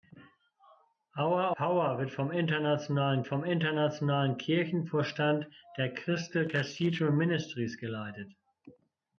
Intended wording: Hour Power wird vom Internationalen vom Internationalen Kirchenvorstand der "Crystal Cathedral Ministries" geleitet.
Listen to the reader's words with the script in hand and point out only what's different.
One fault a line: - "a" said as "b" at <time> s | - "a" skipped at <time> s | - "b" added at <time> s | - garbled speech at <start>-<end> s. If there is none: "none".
none